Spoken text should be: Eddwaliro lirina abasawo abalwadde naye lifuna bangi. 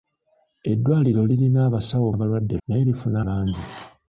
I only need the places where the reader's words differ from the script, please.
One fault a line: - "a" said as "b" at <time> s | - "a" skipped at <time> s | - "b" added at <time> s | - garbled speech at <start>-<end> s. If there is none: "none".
none